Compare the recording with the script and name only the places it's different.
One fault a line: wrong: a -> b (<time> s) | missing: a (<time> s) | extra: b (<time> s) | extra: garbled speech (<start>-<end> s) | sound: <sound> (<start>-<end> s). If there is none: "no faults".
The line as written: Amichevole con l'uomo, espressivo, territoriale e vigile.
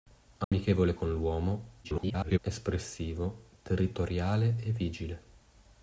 sound: dropout (0.4-0.5 s)
extra: garbled speech (1.8-2.4 s)